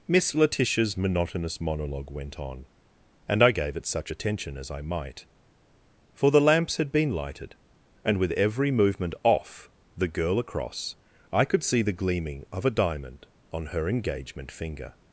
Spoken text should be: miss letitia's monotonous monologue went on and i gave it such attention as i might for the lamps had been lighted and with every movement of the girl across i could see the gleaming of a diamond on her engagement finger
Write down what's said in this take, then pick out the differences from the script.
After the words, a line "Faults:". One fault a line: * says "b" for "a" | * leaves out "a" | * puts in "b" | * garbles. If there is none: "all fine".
miss letitia's monotonous monologue went on and i gave it such attention as i might for the lamps had been lighted and with every movement off the girl across i could see the gleaming of a diamond on her engagement finger
Faults:
* says "off" for "of"